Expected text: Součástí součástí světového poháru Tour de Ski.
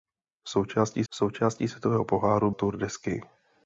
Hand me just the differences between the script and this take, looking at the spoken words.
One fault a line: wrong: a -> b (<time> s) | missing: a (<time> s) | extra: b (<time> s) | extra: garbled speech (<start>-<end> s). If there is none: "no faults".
no faults